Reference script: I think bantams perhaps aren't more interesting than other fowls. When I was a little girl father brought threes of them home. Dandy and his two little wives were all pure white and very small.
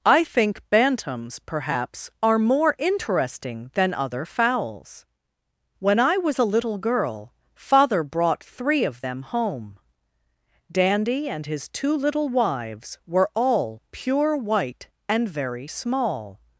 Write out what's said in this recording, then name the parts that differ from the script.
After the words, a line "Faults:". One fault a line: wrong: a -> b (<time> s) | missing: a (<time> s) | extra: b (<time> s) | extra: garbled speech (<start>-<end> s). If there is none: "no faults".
I think bantams perhaps are more interesting than other fowls. When I was a little girl father brought three of them home. Dandy and his two little wives were all pure white and very small.
Faults:
wrong: aren't -> are (2.2 s)
wrong: threes -> three (8.4 s)